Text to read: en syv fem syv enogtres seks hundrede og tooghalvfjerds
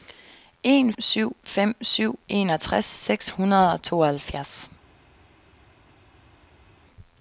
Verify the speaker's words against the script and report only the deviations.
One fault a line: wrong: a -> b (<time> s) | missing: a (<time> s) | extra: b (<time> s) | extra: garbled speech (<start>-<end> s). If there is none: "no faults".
no faults